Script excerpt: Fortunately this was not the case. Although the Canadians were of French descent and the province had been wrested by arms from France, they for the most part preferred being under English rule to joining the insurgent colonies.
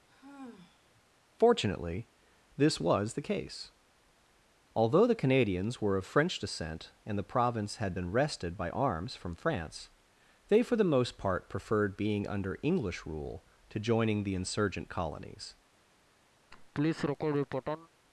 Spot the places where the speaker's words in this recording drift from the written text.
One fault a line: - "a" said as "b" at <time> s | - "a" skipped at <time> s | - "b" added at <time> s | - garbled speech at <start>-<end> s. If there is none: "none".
- "not" skipped at 3.1 s